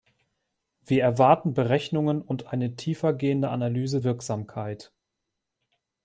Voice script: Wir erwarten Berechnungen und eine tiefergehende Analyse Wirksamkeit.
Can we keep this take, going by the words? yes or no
yes